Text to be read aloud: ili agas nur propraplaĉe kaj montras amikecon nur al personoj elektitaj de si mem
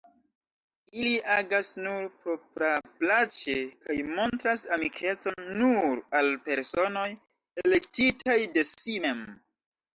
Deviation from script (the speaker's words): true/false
false